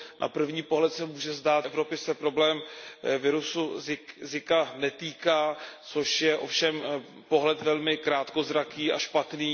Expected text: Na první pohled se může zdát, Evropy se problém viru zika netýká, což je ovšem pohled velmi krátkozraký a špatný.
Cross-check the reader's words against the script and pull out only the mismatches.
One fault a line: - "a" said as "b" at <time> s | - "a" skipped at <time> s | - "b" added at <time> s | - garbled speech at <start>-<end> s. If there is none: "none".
none